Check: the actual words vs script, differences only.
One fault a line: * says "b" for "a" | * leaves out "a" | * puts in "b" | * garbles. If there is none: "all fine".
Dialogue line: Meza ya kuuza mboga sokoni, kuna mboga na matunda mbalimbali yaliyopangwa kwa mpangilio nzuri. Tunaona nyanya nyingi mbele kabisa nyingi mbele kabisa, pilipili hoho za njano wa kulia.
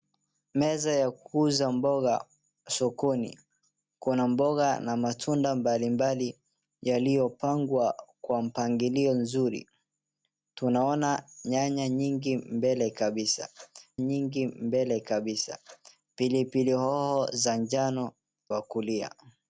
all fine